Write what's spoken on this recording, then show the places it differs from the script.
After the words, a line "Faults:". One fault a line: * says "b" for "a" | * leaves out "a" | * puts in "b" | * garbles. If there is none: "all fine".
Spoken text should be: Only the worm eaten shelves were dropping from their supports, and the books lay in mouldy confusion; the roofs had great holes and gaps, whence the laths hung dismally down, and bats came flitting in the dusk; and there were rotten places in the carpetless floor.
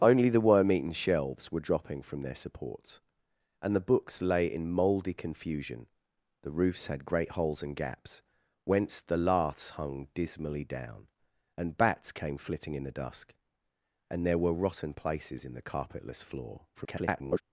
Only the worm eaten shelves were dropping from their supports, and the books lay in mouldy confusion; the roofs had great holes and gaps, whence the laths hung dismally down, and bats came flitting in the dusk; and there were rotten places in the carpetless floor. [garbled]
Faults:
* garbles